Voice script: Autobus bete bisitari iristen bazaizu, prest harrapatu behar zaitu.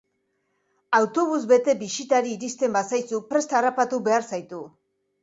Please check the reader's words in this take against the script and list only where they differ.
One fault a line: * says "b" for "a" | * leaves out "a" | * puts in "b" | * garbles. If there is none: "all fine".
all fine